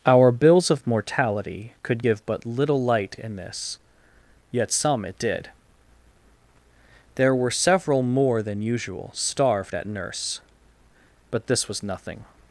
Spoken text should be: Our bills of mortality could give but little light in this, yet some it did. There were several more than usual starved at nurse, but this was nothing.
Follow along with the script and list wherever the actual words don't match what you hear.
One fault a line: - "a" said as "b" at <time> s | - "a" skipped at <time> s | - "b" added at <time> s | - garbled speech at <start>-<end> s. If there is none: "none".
none